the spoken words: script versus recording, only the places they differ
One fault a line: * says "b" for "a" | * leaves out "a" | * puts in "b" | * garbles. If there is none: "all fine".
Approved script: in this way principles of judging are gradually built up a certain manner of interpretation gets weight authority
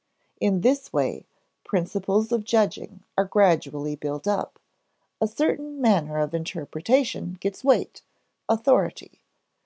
all fine